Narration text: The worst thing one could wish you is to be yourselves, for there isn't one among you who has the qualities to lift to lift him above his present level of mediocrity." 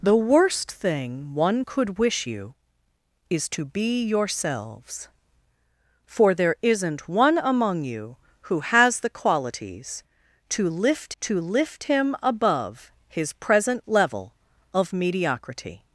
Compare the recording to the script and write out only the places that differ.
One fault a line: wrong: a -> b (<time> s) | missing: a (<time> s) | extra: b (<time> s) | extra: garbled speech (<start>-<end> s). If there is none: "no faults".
no faults